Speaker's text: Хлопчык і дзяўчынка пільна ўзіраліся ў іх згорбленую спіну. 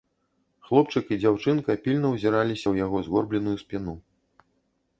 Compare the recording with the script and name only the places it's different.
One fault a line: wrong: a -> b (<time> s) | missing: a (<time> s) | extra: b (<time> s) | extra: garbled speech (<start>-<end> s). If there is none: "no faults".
wrong: іх -> яго (2.8 s)